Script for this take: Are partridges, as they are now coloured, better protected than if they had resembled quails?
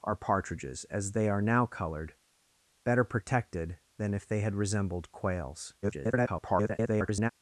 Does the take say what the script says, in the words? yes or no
no